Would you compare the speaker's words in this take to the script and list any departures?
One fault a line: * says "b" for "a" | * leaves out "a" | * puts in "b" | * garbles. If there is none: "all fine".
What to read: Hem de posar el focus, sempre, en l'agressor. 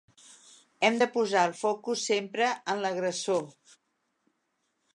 all fine